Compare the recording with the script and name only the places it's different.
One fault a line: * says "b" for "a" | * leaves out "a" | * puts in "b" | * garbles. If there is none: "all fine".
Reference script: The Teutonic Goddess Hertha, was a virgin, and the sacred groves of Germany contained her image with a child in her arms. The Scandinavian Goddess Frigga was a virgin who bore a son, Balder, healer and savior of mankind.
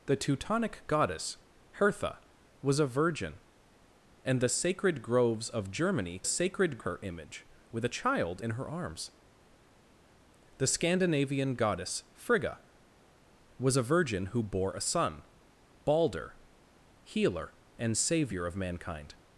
* says "sacred" for "contained"